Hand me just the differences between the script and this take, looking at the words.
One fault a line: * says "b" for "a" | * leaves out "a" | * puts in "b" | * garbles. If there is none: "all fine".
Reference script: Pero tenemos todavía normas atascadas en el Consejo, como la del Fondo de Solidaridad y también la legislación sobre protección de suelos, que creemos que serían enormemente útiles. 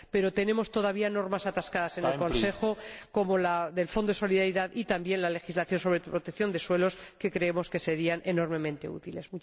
all fine